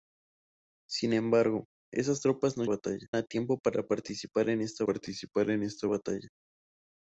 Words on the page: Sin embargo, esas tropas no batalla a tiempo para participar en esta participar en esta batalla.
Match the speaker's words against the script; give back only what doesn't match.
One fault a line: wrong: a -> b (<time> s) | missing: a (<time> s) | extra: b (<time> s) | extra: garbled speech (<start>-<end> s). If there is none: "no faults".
no faults